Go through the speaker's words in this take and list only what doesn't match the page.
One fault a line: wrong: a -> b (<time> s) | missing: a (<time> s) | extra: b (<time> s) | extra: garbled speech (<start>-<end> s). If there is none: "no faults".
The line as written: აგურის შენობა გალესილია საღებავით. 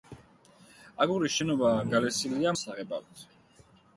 no faults